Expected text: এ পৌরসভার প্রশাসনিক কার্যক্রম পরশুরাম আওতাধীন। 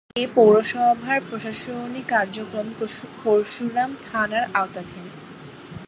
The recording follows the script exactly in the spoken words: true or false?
false